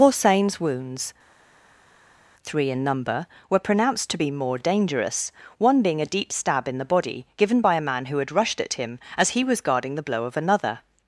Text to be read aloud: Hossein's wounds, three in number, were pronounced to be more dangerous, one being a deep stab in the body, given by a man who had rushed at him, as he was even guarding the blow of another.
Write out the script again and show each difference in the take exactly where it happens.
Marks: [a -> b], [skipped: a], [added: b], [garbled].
Hossein's wounds, three in number, were pronounced to be more dangerous, one being a deep stab in the body, given by a man who had rushed at him, as he was [skipped: even] guarding the blow of another.